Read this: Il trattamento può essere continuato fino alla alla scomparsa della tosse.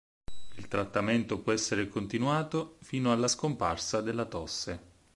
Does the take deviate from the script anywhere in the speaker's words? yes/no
yes